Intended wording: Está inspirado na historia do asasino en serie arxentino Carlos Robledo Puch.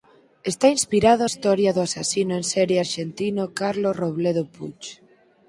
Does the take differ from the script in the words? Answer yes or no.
yes